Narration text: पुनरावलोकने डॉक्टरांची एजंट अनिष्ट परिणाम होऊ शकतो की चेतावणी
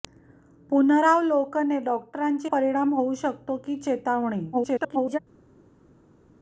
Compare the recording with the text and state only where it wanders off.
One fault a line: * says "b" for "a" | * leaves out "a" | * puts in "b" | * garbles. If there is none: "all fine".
* leaves out "एजंट अनिष्ट"
* garbles